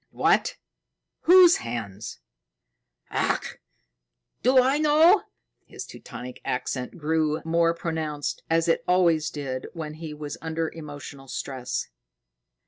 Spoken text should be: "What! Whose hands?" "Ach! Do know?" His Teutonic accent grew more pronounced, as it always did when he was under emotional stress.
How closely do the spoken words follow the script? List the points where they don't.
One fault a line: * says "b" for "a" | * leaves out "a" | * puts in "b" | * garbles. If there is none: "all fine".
* puts in "I"